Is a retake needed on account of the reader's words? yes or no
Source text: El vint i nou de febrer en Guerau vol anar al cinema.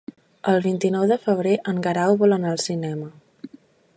no